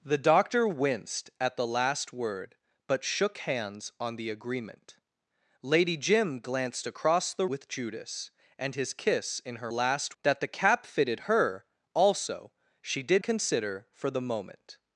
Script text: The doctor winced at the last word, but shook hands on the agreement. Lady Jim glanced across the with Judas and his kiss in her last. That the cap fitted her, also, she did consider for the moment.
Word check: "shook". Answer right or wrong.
right